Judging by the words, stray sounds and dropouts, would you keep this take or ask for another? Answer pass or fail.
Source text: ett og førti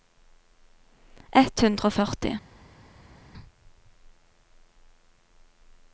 fail